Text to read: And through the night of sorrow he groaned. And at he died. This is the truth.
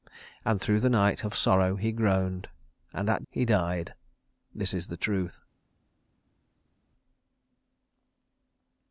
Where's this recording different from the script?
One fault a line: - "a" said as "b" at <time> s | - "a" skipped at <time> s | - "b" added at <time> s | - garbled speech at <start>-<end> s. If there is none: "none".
none